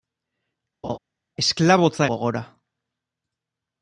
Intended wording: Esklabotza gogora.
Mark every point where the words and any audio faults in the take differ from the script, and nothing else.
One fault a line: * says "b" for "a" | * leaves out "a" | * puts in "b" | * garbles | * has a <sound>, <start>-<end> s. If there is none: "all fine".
* has a laugh, 0.8-1.0 s